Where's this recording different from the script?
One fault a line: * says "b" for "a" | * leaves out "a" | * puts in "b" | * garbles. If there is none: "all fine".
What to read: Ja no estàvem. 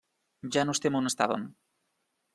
* puts in "estem on"